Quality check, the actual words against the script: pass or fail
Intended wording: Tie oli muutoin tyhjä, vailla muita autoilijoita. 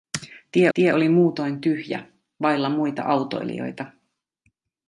fail